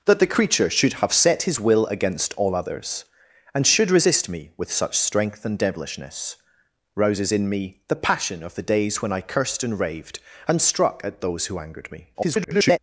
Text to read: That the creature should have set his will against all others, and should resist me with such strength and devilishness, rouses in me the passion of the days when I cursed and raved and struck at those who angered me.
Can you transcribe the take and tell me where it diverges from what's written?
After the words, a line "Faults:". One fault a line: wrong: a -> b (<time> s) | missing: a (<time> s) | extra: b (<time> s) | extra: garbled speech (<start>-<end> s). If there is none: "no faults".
That the creature should have set his will against all others, and should resist me with such strength and devilishness, rouses in me the passion of the days when I cursed and raved and struck at those who angered me. [garbled]
Faults:
extra: garbled speech (12.1-12.8 s)